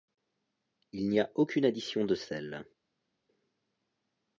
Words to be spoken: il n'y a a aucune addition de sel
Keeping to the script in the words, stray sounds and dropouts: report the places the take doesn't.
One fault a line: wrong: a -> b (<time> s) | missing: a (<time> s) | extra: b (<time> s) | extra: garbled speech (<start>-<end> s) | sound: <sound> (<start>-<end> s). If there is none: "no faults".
missing: a (1.3 s)